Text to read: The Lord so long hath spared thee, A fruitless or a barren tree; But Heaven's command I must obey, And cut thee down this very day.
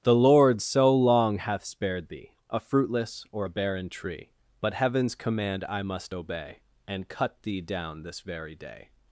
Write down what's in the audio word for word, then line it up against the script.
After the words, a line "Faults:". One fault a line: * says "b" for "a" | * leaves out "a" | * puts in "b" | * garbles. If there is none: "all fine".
The Lord so long hath spared thee, A fruitless or a barren tree; But Heaven's command I must obey, And cut thee down this very day.
Faults:
all fine